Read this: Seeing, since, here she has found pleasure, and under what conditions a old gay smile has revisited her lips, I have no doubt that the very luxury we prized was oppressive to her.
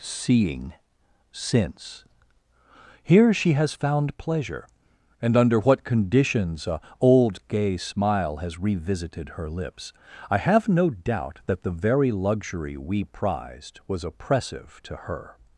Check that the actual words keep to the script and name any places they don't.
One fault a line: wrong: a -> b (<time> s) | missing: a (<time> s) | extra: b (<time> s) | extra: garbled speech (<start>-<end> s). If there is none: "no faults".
no faults